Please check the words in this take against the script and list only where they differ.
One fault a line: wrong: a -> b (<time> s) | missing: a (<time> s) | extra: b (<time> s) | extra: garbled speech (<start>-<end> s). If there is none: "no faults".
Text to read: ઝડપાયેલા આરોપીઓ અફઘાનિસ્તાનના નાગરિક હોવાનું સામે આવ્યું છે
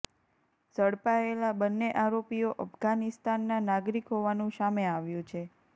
extra: બંને (1.6 s)